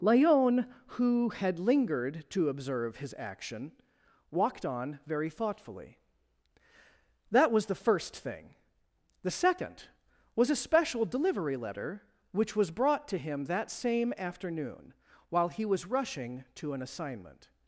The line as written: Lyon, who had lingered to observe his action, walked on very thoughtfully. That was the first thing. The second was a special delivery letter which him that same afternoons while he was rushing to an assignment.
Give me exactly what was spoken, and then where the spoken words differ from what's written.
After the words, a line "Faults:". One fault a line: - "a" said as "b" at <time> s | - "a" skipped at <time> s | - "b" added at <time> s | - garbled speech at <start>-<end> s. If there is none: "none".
Lyon, who had lingered to observe his action, walked on very thoughtfully. That was the first thing. The second was a special delivery letter which was brought to him that same afternoon while he was rushing to an assignment.
Faults:
- "was brought to" added at 12.5 s
- "afternoons" said as "afternoon" at 14.2 s